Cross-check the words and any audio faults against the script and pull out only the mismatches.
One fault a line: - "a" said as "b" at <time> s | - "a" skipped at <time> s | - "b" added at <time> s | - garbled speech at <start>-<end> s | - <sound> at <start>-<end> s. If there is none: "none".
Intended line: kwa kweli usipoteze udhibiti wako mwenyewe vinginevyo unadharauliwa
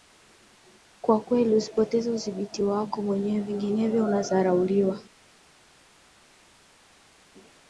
none